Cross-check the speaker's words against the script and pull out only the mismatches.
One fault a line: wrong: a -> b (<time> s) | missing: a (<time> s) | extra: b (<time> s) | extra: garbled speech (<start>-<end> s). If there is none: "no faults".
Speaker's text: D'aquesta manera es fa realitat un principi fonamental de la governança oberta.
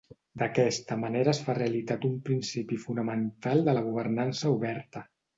no faults